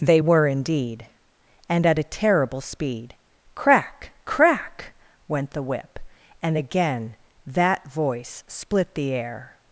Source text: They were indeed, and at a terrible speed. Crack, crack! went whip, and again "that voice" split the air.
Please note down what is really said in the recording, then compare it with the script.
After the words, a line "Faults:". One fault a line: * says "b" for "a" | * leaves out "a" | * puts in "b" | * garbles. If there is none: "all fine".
They were indeed, and at a terrible speed. Crack, crack! went the whip, and again "that voice" split the air.
Faults:
* puts in "the"